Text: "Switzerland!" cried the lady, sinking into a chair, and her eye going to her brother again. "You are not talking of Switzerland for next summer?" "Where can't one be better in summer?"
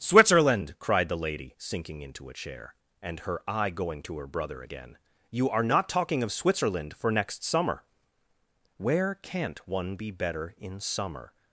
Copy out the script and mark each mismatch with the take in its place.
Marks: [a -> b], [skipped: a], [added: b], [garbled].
"Switzerland!" cried the lady, sinking into a chair, and her eye going to her brother again. "You are not talking of Switzerland for next summer?" "Where can't one be better in summer?"